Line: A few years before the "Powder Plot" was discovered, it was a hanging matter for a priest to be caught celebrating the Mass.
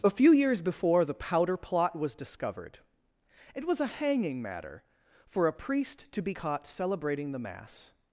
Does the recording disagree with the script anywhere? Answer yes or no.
no